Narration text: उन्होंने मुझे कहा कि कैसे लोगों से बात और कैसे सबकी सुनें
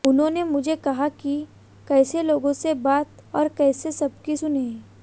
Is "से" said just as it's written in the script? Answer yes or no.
yes